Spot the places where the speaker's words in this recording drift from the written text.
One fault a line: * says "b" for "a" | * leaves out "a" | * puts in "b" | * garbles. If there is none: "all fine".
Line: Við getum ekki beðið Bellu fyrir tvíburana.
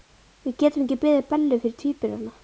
all fine